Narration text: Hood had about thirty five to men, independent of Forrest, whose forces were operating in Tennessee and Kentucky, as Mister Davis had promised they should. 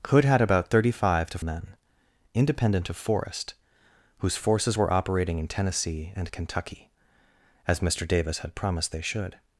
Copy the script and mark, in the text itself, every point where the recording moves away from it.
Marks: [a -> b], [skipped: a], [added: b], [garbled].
Hood had about thirty five to men, independent of Forrest, whose forces were operating in Tennessee and Kentucky, as Mister Davis had promised they should.